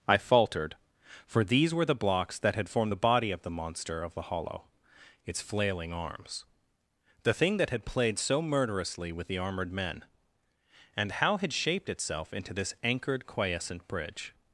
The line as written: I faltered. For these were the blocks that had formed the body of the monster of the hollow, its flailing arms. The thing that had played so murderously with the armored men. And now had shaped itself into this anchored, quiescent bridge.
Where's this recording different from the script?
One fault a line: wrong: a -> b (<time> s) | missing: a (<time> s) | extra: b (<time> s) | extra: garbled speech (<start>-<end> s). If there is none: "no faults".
wrong: now -> how (11.1 s)